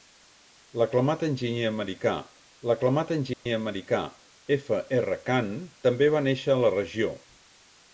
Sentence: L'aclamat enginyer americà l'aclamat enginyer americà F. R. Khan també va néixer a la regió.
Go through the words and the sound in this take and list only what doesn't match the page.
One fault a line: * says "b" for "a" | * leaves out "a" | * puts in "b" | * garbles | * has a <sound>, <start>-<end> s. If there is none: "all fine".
* has a dropout, 3.3-3.5 s